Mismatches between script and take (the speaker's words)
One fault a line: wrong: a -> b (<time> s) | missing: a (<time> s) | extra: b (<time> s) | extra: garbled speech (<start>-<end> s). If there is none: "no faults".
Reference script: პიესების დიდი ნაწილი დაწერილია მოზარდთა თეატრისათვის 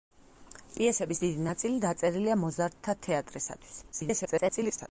extra: garbled speech (3.9-4.9 s)